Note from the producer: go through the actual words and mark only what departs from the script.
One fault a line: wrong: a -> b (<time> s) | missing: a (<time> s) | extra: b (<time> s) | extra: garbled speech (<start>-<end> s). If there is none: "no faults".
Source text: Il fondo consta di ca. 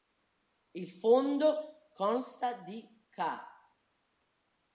no faults